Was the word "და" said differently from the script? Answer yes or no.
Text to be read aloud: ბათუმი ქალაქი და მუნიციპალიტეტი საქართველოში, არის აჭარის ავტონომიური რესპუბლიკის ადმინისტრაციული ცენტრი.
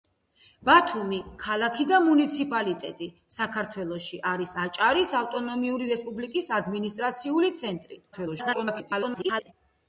no